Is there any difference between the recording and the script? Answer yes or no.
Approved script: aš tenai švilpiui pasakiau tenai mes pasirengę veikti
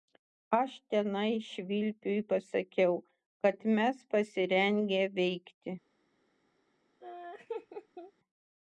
yes